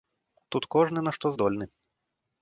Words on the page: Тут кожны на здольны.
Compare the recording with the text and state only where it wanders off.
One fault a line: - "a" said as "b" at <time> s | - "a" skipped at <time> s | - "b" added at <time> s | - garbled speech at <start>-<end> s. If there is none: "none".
- "што" added at 1.2 s